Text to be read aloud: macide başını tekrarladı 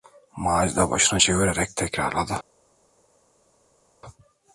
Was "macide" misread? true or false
false